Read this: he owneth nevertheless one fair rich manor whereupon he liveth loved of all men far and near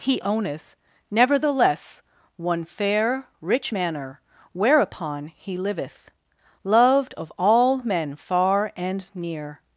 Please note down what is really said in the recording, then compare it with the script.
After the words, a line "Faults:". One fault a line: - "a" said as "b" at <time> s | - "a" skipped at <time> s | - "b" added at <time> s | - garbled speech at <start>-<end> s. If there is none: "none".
he owneth nevertheless one fair rich manor whereupon he liveth loved of all men far and near
Faults:
none